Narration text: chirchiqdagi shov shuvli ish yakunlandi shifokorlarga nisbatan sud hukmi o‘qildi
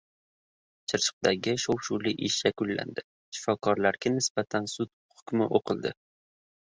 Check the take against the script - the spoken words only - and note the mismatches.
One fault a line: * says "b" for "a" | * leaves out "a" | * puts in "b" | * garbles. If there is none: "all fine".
all fine